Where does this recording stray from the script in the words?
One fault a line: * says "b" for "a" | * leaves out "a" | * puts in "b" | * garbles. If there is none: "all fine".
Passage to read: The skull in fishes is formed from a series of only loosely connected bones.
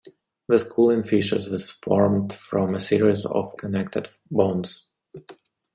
* leaves out "only loosely"